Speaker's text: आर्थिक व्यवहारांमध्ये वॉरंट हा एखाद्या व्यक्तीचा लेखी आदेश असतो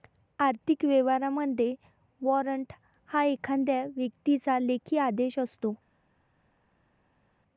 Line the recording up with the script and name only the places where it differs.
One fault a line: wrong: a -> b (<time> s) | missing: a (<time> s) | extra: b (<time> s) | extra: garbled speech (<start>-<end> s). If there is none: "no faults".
no faults